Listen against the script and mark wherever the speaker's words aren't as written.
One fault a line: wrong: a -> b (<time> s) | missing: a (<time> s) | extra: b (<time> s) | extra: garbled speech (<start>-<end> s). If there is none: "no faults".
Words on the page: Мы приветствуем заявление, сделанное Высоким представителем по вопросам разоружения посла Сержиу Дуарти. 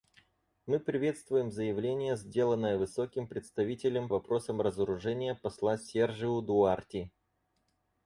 missing: по (4.1 s)